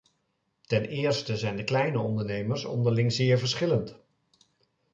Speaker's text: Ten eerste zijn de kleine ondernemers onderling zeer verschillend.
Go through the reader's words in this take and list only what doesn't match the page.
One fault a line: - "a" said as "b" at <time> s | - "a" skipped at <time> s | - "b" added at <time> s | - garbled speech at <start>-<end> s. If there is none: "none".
none